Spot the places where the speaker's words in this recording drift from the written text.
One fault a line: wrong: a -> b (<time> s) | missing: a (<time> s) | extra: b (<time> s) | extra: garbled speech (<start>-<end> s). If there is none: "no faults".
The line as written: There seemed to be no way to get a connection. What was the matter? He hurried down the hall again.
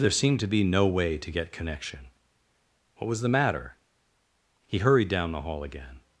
missing: a (1.5 s)